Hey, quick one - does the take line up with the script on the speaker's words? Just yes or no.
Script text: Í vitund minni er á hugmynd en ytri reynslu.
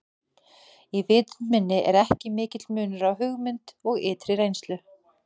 no